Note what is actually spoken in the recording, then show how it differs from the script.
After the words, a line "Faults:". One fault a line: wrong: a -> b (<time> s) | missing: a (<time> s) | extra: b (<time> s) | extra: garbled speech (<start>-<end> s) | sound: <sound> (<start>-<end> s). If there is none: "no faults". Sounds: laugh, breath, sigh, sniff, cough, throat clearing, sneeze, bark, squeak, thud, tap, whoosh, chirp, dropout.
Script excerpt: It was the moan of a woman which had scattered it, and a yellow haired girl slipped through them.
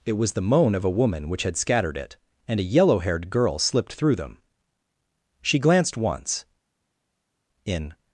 It was the moan of a woman which had scattered it, and a yellow haired girl slipped through them. She glanced once, in
Faults:
extra: She glanced once in (5.4 s)